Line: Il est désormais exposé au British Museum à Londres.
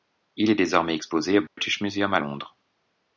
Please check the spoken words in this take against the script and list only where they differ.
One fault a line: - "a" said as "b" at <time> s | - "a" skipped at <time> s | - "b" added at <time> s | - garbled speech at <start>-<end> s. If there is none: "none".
none